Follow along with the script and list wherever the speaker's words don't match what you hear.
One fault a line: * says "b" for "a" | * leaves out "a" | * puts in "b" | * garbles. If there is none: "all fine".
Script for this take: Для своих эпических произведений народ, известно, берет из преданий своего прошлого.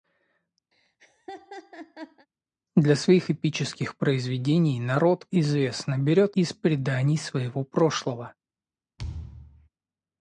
all fine